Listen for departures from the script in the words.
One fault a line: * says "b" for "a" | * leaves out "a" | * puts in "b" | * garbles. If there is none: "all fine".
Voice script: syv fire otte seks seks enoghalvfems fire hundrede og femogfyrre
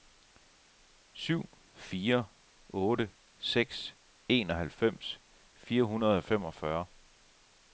* leaves out "seks"